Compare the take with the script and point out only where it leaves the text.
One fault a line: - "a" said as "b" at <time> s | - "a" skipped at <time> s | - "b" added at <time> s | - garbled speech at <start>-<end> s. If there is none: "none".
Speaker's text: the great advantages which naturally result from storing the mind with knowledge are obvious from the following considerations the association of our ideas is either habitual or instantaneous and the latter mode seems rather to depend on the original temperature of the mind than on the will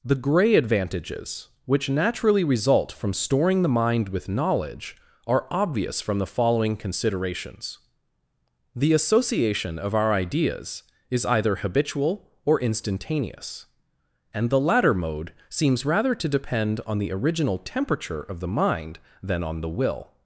- "great" said as "grey" at 0.2 s